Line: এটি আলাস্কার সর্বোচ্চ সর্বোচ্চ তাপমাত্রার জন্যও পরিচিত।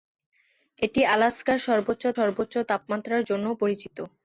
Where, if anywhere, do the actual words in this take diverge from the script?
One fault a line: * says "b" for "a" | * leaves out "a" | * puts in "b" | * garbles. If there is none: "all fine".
all fine